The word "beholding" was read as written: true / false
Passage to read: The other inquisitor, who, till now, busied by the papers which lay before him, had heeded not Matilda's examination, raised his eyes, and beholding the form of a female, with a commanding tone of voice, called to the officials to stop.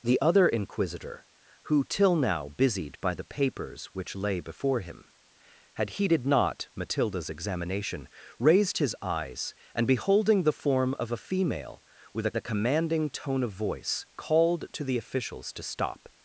true